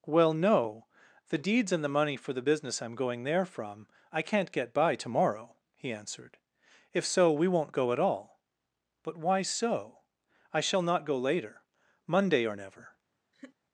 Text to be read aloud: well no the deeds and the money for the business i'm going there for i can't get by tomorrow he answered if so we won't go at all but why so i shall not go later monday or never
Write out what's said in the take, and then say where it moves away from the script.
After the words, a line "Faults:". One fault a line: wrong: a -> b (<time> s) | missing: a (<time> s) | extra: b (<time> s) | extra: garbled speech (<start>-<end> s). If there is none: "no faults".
well no the deeds and the money for the business i'm going there from i can't get by tomorrow he answered if so we won't go at all but why so i shall not go later monday or never
Faults:
wrong: for -> from (3.5 s)